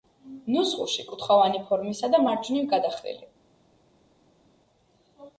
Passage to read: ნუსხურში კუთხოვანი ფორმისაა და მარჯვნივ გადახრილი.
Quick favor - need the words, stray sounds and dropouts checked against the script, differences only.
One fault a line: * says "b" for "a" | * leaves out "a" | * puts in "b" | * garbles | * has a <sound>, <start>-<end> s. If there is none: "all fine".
all fine